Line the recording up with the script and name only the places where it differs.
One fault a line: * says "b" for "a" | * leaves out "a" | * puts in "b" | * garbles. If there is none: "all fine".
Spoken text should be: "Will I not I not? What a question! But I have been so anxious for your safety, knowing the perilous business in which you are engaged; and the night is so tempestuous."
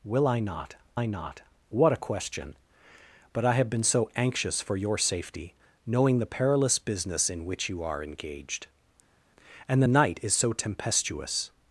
all fine